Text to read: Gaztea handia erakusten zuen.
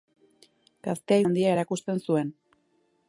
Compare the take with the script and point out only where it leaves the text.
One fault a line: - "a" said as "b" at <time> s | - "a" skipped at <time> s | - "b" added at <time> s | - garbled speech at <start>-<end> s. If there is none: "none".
none